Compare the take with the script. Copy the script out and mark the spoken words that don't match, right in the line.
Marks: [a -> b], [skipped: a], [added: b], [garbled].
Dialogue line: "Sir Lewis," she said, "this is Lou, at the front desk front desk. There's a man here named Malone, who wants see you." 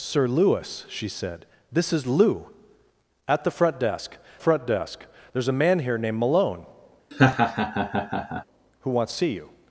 "Sir Lewis," she said, "this is Lou, at the front desk front desk. There's a man here named Malone, who wants see you."